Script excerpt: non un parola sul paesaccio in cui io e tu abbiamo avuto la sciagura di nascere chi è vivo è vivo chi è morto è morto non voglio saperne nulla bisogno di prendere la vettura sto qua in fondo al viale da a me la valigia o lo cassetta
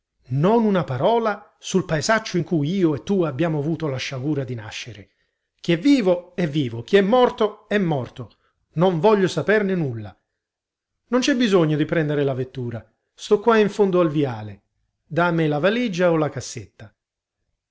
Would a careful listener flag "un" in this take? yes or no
yes